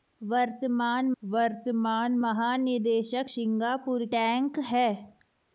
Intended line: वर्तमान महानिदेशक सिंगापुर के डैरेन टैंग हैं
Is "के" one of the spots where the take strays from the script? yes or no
yes